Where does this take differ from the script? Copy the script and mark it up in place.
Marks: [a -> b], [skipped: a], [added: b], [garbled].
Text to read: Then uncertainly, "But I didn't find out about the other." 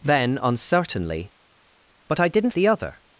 Then uncertainly, "But I didn't [skipped: find out about] the other."